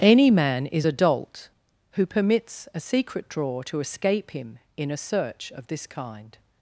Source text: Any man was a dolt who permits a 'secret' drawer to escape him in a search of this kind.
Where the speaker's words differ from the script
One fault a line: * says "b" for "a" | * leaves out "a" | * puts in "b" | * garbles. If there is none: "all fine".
* says "is" for "was"